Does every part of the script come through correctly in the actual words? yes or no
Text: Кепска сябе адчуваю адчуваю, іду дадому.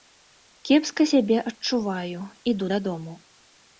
no